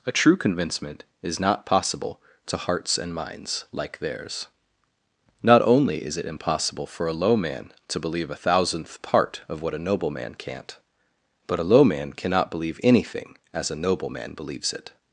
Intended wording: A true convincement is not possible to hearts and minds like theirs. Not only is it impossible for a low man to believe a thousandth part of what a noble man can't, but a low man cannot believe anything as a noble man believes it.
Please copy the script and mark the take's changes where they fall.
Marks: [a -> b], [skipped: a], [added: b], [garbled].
A true convincement is not possible to hearts and minds like theirs. Not only is it impossible for a low man to believe a thousandth part of what a noble man can't, but a low man cannot believe anything as a noble man believes it.